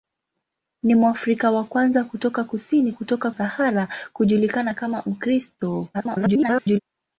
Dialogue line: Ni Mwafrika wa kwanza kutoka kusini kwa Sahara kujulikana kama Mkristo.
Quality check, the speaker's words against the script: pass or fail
fail